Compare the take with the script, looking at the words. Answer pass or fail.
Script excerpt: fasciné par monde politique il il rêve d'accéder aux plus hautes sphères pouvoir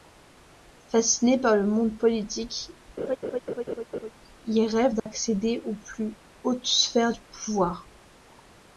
fail